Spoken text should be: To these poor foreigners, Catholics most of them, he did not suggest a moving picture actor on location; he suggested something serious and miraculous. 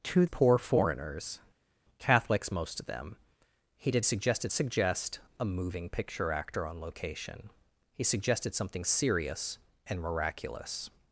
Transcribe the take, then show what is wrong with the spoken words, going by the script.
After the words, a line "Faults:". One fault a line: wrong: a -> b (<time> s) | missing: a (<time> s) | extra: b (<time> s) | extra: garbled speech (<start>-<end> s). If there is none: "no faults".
To poor foreigners, Catholics most of them, he did suggested suggest a moving picture actor on location; he suggested something serious and miraculous.
Faults:
missing: these (0.2 s)
wrong: not -> suggested (4.0 s)